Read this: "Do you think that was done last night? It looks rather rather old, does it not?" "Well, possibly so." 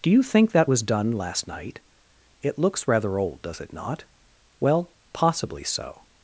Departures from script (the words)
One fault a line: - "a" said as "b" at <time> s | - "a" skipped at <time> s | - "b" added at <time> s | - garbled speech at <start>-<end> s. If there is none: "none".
- "rather" skipped at 3.2 s